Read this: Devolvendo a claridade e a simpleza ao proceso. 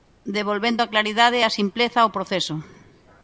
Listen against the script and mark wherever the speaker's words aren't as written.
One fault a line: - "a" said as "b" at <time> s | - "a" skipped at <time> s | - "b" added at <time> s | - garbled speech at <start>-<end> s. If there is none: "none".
none